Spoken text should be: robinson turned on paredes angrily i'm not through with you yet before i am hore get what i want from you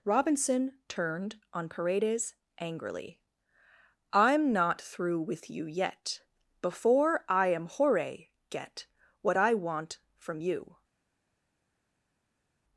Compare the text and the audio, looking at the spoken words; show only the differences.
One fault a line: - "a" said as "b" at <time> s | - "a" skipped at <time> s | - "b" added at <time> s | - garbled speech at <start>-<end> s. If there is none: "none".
none